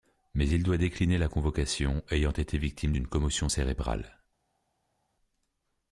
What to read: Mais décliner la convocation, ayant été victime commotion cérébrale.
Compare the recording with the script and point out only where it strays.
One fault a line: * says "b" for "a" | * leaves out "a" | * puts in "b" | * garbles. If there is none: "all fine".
* puts in "il doit"
* puts in "d'une"